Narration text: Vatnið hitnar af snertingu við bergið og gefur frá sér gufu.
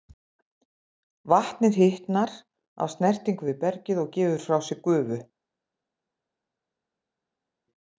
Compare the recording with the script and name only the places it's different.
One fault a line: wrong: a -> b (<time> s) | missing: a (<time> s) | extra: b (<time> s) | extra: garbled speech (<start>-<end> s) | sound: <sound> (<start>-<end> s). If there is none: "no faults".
no faults